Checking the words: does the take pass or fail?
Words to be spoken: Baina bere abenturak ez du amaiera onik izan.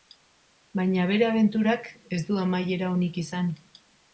pass